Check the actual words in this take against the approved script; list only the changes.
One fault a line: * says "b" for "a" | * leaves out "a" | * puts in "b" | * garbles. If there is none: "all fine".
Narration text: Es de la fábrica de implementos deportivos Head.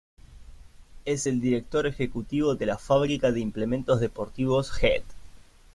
* puts in "el director ejecutivo"